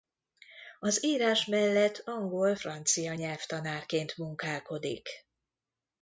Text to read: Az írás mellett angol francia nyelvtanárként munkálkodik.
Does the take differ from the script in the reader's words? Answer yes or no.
no